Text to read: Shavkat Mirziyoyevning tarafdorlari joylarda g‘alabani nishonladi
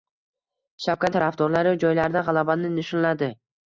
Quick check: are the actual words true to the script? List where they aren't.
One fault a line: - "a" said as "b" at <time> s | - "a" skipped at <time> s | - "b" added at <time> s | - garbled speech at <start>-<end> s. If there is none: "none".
- "Mirziyoyevning" skipped at 1.1 s